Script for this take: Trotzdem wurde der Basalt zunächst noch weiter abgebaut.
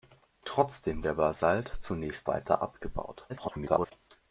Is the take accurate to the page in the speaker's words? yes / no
no